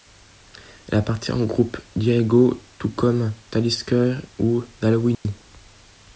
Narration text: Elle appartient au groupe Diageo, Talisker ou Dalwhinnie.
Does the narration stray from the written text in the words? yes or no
yes